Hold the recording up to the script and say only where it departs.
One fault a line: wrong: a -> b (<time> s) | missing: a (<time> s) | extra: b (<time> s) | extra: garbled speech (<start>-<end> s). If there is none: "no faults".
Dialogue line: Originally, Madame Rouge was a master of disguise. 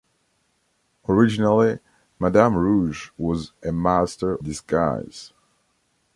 missing: of (4.4 s)